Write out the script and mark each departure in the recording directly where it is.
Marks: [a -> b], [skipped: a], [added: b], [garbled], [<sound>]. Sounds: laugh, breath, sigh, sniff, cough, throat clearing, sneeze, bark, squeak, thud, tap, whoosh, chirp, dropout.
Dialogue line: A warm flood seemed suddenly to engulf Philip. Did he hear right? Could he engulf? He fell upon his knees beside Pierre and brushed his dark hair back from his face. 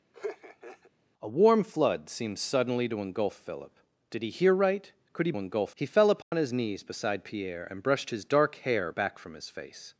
[laugh] A warm flood seemed suddenly to engulf Philip. Did he hear right? Could he engulf? He fell upon [dropout] his knees beside Pierre and brushed his dark hair back from his face.